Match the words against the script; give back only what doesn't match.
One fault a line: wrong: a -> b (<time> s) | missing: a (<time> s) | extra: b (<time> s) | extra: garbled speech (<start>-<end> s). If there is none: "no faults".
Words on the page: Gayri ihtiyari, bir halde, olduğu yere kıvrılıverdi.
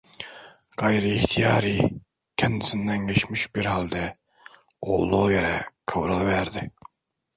extra: kendisinden geçmiş (2.4 s)